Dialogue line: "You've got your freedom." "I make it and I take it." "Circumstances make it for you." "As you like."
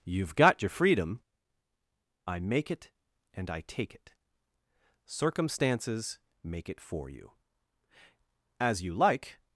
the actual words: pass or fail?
pass